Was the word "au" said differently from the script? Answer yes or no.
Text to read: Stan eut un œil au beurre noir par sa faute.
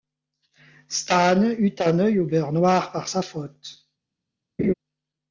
no